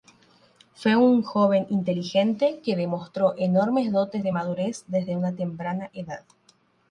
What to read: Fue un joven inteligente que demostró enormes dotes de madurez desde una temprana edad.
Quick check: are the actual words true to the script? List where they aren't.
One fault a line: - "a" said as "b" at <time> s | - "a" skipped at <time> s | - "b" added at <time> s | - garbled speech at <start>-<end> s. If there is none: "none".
none